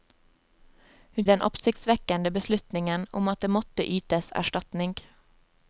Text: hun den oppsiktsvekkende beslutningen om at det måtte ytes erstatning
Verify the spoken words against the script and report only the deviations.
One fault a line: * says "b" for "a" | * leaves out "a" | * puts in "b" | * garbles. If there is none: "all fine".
all fine